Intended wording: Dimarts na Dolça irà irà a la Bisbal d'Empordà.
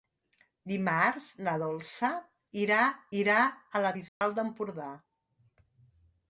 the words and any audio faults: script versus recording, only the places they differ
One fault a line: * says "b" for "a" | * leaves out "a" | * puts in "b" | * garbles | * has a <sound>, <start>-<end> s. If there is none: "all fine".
* has a dropout, 4.1-4.2 s